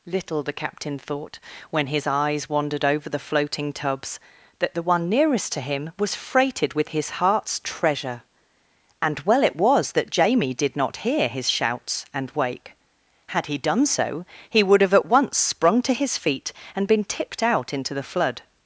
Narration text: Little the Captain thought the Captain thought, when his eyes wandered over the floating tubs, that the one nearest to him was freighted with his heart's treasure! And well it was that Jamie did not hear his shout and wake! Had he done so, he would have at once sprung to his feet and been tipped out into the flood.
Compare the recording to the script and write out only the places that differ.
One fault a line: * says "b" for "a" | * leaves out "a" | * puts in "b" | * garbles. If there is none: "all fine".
* leaves out "the Captain thought"
* says "shouts" for "shout"